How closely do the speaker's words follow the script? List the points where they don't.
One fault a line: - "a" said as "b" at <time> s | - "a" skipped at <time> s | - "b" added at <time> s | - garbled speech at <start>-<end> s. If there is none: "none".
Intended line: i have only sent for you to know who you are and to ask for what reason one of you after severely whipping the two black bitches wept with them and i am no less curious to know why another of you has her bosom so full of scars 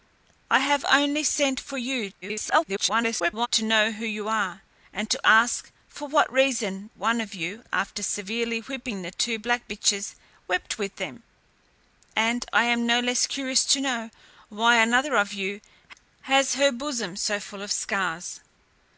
- garbled speech at 2.2-3.5 s